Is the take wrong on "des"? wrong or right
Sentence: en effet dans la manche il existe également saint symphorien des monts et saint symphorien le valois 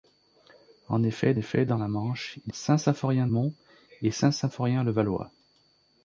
wrong